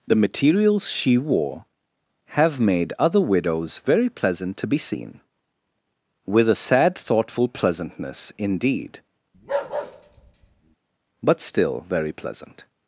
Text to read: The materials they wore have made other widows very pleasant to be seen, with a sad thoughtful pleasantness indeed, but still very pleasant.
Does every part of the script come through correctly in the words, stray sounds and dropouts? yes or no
no